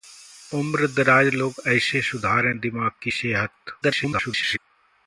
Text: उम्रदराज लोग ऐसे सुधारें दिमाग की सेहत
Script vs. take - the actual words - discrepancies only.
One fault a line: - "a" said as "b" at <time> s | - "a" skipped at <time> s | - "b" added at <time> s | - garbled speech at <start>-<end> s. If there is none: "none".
- garbled speech at 3.8-4.6 s